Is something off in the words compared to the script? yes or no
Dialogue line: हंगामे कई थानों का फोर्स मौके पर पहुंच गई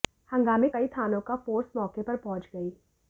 no